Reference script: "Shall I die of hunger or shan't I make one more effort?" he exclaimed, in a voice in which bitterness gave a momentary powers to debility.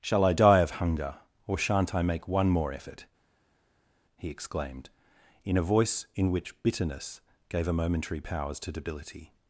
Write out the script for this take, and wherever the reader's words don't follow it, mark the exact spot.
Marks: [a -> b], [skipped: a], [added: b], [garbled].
"Shall I die of hunger or shan't I make one more effort?" he exclaimed, in a voice in which bitterness gave a momentary powers to debility.